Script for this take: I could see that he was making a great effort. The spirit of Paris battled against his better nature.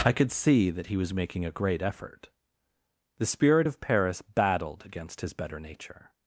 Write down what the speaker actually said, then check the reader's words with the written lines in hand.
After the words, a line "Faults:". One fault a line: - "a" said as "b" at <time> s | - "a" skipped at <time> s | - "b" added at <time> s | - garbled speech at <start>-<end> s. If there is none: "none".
I could see that he was making a great effort. The spirit of Paris battled against his better nature.
Faults:
none